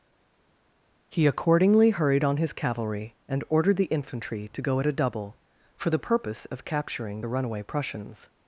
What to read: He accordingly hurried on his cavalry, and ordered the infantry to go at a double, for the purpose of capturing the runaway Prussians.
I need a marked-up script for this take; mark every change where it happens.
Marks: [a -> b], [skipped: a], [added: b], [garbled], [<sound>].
He accordingly hurried on his cavalry, and ordered the infantry to go at a double, for the purpose of capturing the runaway Prussians.